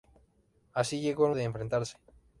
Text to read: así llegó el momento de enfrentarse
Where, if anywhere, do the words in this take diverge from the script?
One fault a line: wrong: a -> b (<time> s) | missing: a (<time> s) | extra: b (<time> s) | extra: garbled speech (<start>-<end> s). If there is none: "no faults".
missing: momento (1.3 s)